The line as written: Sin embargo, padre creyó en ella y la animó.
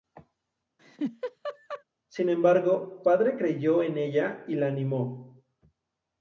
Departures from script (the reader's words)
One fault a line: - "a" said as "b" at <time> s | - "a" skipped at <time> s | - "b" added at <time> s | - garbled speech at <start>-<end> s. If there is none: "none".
none